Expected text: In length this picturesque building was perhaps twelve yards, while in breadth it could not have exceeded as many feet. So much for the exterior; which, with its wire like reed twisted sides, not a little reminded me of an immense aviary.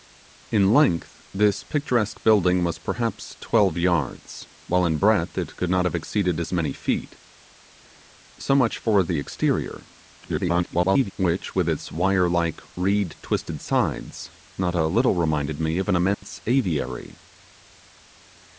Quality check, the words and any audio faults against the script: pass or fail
fail